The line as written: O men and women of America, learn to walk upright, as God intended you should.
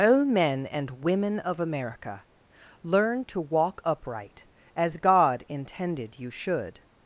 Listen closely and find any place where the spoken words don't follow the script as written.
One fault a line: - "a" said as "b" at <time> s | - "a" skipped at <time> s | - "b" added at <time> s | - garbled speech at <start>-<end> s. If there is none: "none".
none